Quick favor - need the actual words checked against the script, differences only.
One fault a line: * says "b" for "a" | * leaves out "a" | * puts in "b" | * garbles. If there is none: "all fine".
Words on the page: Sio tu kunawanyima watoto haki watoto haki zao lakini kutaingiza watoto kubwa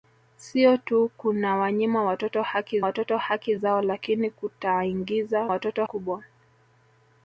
all fine